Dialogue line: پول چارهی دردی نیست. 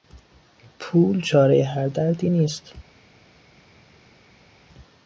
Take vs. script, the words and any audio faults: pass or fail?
fail